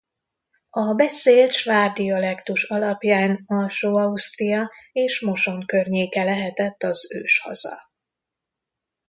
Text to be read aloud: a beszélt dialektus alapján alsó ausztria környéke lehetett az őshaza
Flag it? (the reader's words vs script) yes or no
yes